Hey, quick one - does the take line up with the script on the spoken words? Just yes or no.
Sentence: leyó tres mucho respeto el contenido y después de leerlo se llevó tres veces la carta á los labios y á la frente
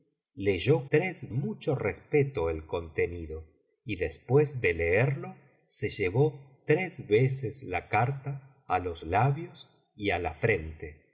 yes